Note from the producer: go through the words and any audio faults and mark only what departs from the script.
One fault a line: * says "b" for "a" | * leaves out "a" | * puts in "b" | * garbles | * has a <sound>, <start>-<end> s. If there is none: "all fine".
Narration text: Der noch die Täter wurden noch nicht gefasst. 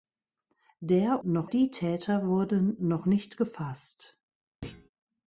* has a thud, 4.6-4.9 s